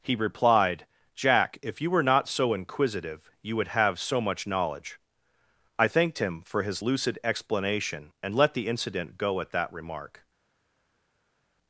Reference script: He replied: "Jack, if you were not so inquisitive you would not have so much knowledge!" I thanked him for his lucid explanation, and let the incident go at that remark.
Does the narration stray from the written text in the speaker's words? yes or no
yes